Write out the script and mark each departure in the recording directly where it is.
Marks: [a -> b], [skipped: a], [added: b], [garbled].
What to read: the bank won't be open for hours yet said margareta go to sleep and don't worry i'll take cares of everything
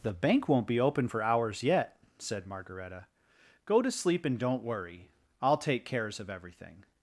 the bank won't be open for hours yet said margareta go to sleep and don't worry i'll take cares of everything